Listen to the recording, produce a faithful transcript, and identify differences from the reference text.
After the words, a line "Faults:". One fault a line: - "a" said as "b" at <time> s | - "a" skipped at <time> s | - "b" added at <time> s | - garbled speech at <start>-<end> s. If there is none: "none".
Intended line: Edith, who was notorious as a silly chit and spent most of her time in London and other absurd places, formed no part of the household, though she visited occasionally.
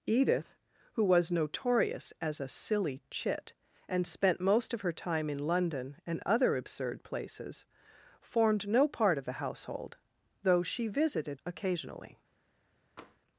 Edith, who was notorious as a silly chit and spent most of her time in London and other absurd places, formed no part of the household, though she visited occasionally.
Faults:
none